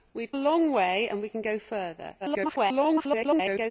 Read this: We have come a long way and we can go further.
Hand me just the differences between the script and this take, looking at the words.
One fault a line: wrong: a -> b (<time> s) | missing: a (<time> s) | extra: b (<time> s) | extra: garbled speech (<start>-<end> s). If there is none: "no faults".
missing: come (0.3 s)
extra: garbled speech (2.2-3.7 s)